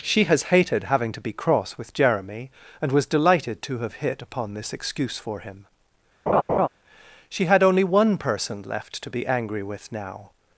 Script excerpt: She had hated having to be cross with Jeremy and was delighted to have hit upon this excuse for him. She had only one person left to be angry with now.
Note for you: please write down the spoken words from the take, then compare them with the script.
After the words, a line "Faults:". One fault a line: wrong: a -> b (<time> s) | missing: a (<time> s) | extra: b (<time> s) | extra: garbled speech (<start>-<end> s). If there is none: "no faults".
She has hated having to be cross with Jeremy and was delighted to have hit upon this excuse for him. She had only one person left to be angry with now.
Faults:
wrong: had -> has (0.2 s)